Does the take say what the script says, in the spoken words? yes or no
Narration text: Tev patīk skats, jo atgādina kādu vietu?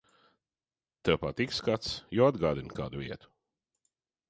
yes